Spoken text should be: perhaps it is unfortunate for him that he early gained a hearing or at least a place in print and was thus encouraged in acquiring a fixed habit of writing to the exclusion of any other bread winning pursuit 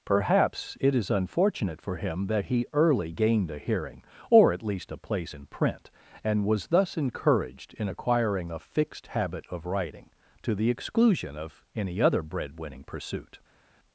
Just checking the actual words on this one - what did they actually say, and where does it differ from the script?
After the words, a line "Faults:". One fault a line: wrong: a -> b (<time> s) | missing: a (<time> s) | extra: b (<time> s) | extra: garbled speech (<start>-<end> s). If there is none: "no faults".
perhaps it is unfortunate for him that he early gained a hearing or at least a place in print and was thus encouraged in acquiring a fixed habit of writing to the exclusion of any other bread winning pursuit
Faults:
no faults